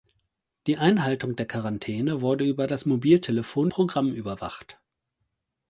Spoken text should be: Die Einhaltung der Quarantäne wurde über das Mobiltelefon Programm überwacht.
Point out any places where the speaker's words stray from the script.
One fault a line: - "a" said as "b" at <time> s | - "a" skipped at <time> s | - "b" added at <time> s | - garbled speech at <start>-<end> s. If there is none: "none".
none